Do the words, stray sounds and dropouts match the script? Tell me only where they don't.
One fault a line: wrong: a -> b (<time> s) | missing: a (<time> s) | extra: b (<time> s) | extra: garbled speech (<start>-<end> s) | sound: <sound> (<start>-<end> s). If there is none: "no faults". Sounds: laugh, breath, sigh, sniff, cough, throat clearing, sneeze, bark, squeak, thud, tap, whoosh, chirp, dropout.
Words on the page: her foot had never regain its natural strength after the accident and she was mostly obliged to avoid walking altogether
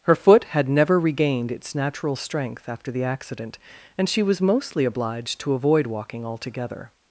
wrong: regain -> regained (1.0 s)